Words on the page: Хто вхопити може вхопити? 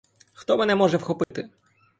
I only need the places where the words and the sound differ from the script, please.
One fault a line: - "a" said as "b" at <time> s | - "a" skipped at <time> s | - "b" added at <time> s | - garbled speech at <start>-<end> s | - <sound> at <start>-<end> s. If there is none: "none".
- "вхопити" said as "мене" at 0.6 s
- dropout at 1.2-1.3 s